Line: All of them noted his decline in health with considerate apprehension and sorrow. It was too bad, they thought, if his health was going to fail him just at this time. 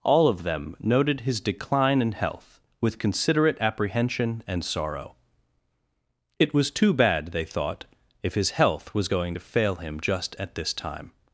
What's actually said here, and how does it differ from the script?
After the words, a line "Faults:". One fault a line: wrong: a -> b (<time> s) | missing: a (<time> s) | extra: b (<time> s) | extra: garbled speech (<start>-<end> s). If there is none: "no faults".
All of them noted his decline in health with considerate apprehension and sorrow. It was too bad, they thought, if his health was going to fail him just at this time.
Faults:
no faults